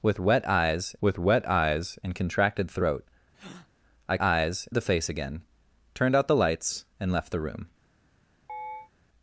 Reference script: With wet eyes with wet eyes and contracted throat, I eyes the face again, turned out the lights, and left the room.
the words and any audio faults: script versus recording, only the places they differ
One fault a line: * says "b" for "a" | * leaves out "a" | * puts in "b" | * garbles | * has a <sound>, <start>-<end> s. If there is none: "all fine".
* has a breath, 3.3-3.7 s
* has a chirp, 8.5-8.9 s